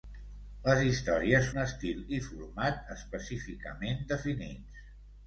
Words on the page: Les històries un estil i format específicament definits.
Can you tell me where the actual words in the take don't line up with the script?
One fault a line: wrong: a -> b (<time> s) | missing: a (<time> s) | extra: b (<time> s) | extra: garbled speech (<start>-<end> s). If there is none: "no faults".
no faults